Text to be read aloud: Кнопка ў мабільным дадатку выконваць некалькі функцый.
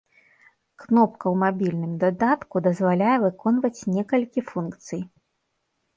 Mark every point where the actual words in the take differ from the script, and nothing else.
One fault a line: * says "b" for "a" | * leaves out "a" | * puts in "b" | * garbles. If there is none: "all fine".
* puts in "дазваляе"